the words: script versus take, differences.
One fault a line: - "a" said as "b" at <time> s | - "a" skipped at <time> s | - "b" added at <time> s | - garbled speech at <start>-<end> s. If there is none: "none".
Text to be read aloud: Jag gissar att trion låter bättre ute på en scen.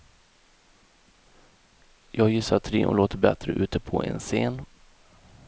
none